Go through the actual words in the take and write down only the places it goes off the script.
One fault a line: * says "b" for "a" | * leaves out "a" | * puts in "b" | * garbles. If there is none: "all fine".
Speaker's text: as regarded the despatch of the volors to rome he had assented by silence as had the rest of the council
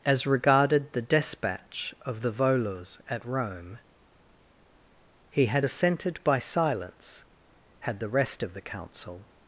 * says "at" for "to"
* leaves out "as"